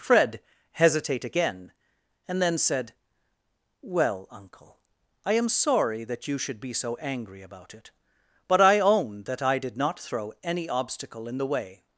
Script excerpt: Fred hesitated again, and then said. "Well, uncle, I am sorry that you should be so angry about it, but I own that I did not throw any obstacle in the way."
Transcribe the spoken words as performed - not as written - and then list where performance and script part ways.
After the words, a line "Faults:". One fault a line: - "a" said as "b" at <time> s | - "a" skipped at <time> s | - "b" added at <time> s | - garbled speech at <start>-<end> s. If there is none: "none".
Fred hesitate again, and then said. "Well, uncle, I am sorry that you should be so angry about it, but I own that I did not throw any obstacle in the way."
Faults:
- "hesitated" said as "hesitate" at 0.7 s